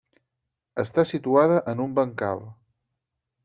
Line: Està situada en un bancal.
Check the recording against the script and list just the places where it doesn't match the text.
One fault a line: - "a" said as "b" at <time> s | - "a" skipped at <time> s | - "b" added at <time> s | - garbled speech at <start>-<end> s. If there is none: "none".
none